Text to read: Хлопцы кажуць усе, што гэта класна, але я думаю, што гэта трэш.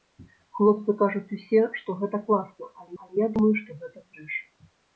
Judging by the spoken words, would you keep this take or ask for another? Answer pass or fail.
fail